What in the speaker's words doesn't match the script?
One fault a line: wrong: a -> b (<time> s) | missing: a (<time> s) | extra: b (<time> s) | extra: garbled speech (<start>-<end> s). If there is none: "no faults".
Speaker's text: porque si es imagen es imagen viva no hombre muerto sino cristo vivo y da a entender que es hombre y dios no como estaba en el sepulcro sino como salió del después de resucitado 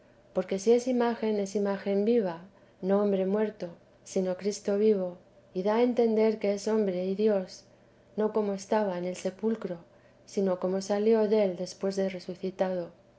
no faults